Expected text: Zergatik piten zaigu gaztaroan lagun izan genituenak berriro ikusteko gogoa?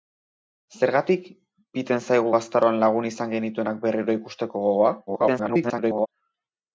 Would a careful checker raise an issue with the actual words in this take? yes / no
yes